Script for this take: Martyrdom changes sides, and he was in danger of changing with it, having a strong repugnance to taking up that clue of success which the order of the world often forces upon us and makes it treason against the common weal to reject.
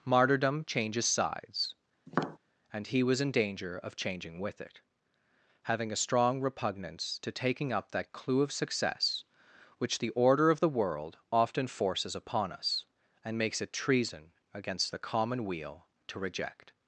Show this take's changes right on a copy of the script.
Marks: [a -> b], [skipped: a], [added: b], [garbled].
Martyrdom changes sides, and he was in danger of changing with it, having a strong repugnance to taking up that clue of success which the order of the world often forces upon us and makes it treason against the common weal to reject.